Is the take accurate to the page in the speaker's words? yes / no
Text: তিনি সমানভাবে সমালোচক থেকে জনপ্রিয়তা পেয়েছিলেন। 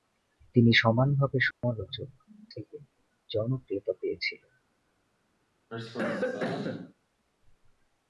yes